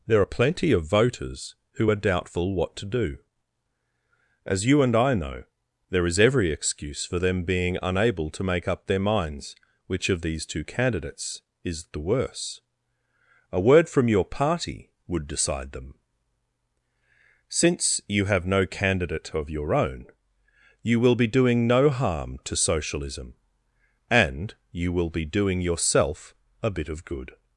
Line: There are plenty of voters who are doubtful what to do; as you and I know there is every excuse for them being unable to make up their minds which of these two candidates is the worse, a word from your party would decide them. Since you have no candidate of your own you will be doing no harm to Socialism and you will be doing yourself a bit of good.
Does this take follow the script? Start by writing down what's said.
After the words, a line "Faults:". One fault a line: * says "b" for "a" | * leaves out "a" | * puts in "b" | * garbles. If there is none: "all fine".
There are plenty of voters who are doubtful what to do; as you and I know there is every excuse for them being unable to make up their minds which of these two candidates is the worse, a word from your party would decide them. Since you have no candidate of your own you will be doing no harm to Socialism and you will be doing yourself a bit of good.
Faults:
all fine